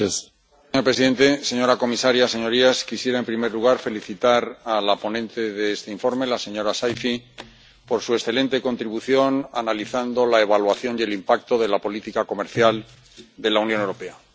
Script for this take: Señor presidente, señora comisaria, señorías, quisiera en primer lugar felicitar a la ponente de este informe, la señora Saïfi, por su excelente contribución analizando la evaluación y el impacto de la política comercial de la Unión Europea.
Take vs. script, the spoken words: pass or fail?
pass